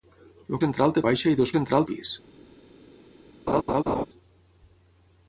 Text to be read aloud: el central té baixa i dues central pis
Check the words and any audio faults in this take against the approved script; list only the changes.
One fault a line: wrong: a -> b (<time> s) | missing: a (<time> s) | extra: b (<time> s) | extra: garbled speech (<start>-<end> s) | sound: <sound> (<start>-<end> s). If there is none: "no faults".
sound: laugh (3.5-4.1 s)